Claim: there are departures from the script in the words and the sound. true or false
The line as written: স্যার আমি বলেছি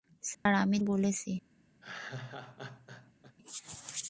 true